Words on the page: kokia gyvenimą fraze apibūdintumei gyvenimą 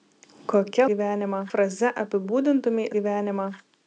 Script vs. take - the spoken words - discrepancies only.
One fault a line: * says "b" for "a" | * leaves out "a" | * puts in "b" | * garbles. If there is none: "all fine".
all fine